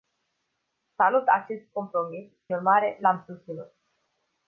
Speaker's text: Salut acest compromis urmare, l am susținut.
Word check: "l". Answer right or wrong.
right